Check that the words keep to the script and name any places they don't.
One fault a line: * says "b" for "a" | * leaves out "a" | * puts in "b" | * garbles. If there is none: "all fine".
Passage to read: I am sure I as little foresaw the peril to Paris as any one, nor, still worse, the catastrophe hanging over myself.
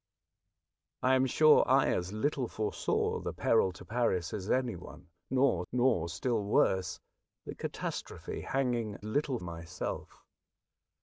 * puts in "nor"
* says "little" for "over"